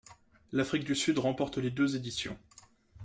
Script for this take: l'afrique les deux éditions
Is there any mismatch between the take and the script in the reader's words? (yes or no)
yes